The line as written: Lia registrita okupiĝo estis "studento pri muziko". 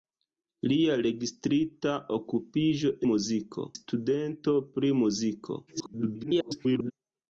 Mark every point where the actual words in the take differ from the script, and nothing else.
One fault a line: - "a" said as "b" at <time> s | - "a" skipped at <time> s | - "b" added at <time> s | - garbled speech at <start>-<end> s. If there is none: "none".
- "estis" said as "muziko" at 3.1 s
- garbled speech at 5.7-6.9 s